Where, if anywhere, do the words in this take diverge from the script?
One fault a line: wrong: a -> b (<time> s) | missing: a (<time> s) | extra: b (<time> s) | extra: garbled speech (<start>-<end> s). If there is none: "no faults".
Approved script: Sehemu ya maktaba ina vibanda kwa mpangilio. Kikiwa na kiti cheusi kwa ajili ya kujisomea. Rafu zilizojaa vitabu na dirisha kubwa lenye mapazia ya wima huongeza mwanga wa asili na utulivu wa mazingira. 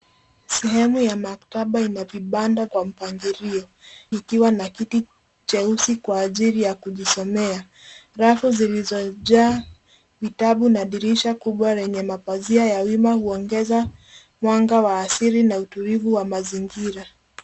no faults